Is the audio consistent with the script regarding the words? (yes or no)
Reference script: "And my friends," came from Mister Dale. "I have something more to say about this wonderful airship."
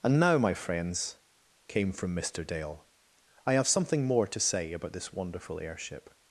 no